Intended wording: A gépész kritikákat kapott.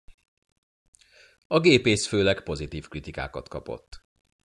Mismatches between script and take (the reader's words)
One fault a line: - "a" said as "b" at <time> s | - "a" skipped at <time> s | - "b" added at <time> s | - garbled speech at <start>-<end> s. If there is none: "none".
- "főleg pozitív" added at 2.1 s